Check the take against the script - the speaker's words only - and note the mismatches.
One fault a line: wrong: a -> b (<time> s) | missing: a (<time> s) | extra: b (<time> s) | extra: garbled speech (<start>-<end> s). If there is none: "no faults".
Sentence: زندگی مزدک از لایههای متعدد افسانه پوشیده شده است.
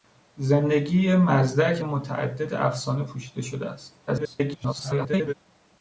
missing: از لایههای (1.8 s)
extra: garbled speech (4.1-5.3 s)